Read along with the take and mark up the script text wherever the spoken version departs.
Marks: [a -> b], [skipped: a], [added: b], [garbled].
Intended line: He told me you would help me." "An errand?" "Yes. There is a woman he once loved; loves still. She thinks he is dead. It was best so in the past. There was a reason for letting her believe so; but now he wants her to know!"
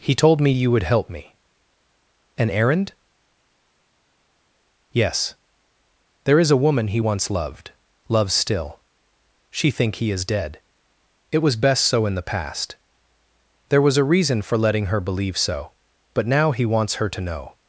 He told me you would help me." "An errand?" "Yes. There is a woman he once loved; loves still. She [thinks -> think] he is dead. It was best so in the past. There was a reason for letting her believe so; but now he wants her to know!"